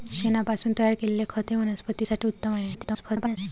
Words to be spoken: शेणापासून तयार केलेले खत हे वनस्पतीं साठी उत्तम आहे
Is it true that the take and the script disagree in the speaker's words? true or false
true